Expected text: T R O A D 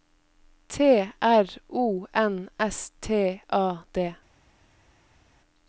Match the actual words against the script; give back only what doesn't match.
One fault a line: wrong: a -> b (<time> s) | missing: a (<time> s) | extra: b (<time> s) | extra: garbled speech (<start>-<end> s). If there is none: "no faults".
extra: N S T (2.1 s)